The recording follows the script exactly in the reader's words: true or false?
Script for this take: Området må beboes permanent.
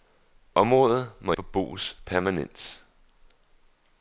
true